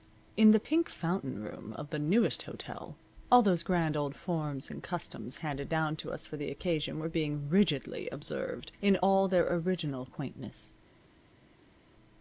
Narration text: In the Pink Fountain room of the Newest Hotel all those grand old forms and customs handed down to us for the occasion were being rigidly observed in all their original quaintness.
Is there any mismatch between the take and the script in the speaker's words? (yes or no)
no